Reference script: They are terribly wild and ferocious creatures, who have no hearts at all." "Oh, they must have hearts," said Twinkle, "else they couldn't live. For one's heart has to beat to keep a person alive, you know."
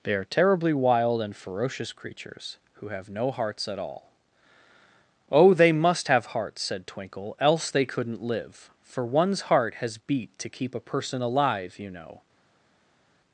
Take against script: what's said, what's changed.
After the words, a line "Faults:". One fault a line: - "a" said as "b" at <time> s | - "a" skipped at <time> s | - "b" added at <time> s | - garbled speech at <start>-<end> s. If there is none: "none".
They are terribly wild and ferocious creatures, who have no hearts at all." "Oh, they must have hearts," said Twinkle, "else they couldn't live. For one's heart has beat to keep a person alive, you know."
Faults:
- "to" skipped at 10.0 s